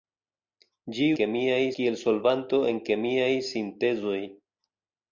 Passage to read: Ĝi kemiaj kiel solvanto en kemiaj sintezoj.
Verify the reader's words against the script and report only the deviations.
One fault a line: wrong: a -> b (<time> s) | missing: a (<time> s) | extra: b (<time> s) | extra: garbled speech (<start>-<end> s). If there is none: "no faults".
no faults